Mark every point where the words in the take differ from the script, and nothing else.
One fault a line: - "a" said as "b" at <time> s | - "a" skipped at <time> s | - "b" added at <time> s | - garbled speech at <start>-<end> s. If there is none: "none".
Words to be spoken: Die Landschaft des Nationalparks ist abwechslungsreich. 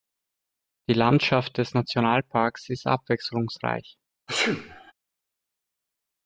none